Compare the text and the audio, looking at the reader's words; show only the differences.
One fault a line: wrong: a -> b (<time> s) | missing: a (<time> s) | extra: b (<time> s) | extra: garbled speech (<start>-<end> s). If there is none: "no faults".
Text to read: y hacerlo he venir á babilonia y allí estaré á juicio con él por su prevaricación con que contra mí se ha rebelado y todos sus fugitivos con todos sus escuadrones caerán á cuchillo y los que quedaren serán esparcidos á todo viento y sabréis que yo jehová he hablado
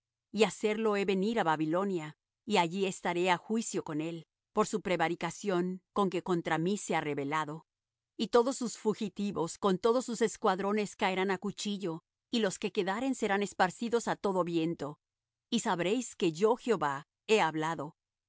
no faults